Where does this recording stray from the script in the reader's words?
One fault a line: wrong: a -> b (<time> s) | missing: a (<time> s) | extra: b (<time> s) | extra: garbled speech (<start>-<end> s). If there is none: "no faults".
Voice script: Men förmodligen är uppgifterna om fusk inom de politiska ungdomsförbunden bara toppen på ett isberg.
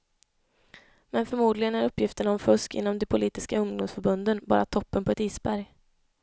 no faults